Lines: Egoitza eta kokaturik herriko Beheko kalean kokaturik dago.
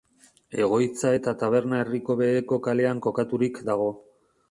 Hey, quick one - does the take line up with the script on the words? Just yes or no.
no